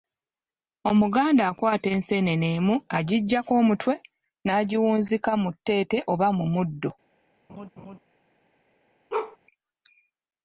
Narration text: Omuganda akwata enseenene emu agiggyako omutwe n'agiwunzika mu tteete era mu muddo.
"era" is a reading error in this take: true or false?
true